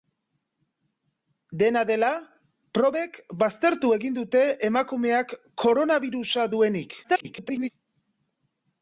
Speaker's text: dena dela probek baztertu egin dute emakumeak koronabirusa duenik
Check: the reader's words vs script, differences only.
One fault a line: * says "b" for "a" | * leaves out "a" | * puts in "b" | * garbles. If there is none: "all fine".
* garbles